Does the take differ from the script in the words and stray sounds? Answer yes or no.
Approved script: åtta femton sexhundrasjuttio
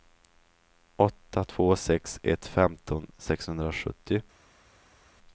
yes